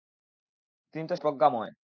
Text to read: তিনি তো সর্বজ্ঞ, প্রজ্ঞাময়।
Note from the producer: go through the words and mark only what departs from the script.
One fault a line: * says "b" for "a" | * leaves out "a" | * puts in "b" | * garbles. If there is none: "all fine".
* leaves out "সর্বজ্ঞ"